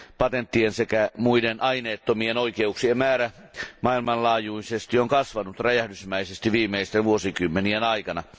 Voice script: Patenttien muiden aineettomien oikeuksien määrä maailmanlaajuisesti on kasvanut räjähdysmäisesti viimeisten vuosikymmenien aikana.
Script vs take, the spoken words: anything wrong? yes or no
yes